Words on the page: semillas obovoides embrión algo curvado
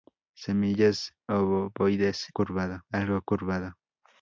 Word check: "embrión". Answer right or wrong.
wrong